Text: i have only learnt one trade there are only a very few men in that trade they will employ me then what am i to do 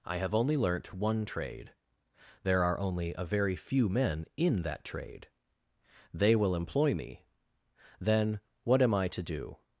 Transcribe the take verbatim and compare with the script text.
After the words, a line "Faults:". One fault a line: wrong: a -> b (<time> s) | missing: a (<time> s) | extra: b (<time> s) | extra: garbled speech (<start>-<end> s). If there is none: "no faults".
i have only learnt one trade there are only a very few men in that trade they will employ me then what am i to do
Faults:
no faults